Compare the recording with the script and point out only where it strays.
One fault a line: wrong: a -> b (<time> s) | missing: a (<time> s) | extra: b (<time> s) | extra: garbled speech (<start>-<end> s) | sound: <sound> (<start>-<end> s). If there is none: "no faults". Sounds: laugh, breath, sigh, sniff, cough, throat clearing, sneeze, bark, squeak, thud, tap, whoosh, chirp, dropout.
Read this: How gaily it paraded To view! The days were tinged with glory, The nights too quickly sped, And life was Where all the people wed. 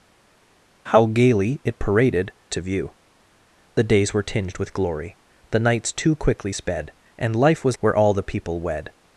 no faults